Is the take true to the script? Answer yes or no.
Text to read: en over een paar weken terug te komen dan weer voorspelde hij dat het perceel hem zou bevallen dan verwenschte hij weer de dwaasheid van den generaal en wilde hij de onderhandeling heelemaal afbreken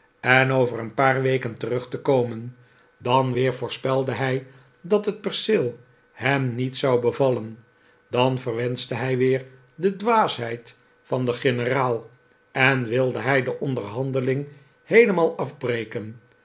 no